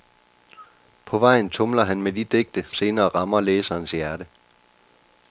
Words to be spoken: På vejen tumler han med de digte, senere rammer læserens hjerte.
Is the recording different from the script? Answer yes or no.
no